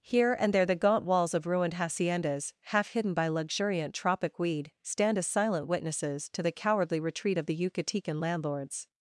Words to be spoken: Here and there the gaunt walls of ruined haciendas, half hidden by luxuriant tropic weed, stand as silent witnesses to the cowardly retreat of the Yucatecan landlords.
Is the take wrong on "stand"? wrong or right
right